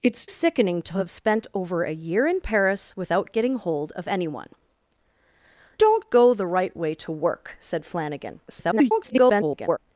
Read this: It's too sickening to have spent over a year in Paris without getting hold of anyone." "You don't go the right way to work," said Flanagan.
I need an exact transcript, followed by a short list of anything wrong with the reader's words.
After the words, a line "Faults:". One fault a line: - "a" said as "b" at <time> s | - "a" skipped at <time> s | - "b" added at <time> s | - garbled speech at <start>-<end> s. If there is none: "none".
It's sickening to have spent over a year in Paris without getting hold of anyone." "Don't go the right way to work," said Flanagan. [garbled]
Faults:
- "too" skipped at 0.2 s
- "You" skipped at 4.5 s
- garbled speech at 8.5-9.8 s